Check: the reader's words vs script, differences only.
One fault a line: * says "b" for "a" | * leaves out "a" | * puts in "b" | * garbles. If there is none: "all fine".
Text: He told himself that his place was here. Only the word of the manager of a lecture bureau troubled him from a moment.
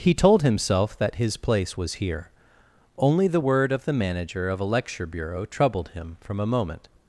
all fine